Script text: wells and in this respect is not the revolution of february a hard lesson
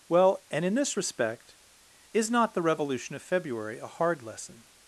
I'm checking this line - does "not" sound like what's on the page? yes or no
yes